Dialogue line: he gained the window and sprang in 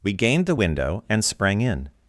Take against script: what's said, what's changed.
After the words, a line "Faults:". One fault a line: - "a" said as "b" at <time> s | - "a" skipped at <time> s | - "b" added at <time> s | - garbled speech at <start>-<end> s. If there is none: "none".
we gained the window and sprang in
Faults:
- "he" said as "we" at 0.0 s